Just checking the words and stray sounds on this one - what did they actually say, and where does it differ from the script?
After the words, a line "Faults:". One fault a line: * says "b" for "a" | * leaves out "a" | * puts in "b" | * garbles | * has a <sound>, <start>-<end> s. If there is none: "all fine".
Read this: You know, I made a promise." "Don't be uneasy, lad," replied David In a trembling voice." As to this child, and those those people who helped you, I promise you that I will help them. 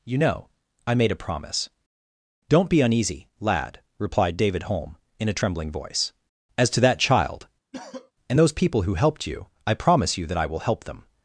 You know, I made a promise." "Don't be uneasy, lad," replied David Holm, in a trembling voice." As to that child, and those people who helped you, I promise you that I will help them.
Faults:
* puts in "Holm"
* says "that" for "this"
* has a cough, 7.7-8.1 s
* leaves out "those"